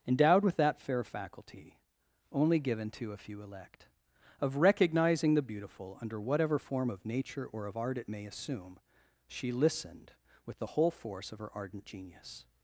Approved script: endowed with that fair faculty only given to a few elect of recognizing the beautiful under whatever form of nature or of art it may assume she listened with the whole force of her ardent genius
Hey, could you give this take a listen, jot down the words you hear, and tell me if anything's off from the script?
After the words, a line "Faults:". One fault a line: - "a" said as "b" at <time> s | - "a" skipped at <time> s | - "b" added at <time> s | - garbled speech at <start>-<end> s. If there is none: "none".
endowed with that fair faculty only given to a few elect of recognizing the beautiful under whatever form of nature or of art it may assume she listened with the whole force of her ardent genius
Faults:
none